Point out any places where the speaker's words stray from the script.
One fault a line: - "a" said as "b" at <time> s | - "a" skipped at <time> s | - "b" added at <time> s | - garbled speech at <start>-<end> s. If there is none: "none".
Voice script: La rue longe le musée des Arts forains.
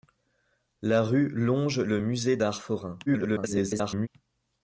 - "des" skipped at 2.4 s
- garbled speech at 3.1-4.1 s